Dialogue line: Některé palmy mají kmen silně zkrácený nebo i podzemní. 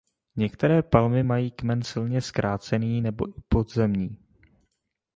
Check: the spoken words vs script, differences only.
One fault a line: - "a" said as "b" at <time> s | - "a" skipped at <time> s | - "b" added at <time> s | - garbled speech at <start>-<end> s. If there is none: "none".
none